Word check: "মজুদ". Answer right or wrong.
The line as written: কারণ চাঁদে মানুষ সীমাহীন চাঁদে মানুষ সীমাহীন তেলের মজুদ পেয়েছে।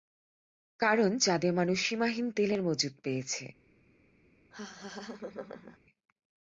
right